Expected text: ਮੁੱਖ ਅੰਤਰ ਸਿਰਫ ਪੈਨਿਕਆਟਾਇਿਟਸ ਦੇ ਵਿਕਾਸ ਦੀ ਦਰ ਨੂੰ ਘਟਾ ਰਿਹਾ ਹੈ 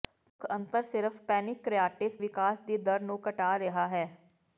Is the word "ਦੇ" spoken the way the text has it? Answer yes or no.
no